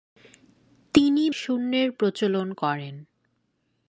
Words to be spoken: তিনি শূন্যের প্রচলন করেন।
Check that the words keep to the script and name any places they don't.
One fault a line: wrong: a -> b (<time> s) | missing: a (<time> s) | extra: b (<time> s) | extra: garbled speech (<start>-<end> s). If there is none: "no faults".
no faults